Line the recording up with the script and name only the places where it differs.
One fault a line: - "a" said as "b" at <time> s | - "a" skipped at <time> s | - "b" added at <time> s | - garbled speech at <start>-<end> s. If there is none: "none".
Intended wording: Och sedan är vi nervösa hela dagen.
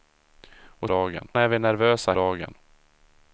- "sedan" said as "dagen" at 0.9 s
- "hela" skipped at 2.1 s